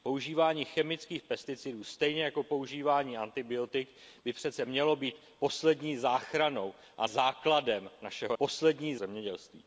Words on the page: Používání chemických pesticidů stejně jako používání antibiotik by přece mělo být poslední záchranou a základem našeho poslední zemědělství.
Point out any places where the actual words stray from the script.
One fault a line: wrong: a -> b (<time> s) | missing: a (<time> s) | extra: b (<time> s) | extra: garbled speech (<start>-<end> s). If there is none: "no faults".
no faults